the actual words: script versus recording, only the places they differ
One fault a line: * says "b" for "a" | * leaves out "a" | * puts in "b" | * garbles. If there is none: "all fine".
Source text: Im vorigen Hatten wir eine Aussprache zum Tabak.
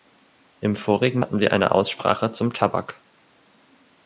all fine